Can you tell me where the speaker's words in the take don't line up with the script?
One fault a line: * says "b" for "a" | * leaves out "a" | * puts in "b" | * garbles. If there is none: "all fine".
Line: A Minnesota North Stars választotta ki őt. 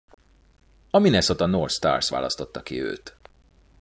all fine